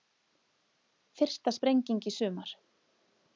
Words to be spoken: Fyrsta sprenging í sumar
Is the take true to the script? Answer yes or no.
yes